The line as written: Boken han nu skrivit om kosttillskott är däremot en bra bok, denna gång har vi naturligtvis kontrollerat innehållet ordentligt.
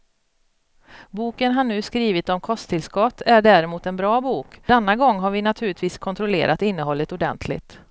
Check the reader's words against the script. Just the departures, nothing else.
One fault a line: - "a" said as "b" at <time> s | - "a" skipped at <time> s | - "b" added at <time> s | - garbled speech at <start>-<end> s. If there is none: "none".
none